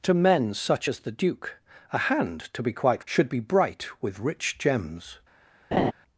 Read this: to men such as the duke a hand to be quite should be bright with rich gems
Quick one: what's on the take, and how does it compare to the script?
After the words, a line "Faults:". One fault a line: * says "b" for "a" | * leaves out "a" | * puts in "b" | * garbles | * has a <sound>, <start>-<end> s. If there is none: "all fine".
to men such as the duke a hand to be quite should be bright with rich gems
Faults:
* has a laugh, 5.7-5.9 s